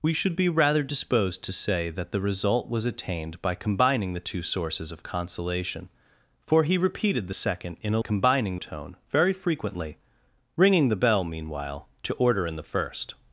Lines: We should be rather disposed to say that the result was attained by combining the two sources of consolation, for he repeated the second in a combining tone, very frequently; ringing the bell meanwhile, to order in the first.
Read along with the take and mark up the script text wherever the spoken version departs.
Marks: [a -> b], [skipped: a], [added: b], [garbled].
We should be rather disposed to say that the result was attained by combining the two sources of consolation, for he repeated the second in a combining tone, very frequently; ringing the bell meanwhile, to order in the first.